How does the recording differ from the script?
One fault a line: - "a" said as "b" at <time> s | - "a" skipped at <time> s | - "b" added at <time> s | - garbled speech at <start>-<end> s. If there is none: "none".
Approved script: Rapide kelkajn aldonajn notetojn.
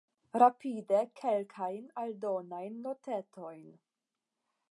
none